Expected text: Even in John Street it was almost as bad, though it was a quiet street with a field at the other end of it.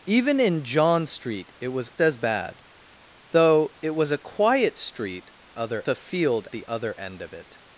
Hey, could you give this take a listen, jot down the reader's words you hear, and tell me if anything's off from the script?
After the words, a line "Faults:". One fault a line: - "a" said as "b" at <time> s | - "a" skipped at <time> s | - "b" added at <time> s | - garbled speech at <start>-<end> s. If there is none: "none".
Even in John Street it was as bad, though it was a quiet street other a field the other end of it.
Faults:
- "almost" skipped at 1.9 s
- "with" said as "other" at 5.6 s
- "at" skipped at 6.5 s